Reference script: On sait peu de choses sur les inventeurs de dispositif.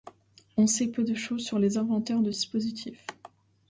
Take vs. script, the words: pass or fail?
pass